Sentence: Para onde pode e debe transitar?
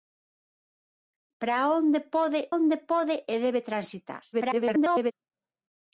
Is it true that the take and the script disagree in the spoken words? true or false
true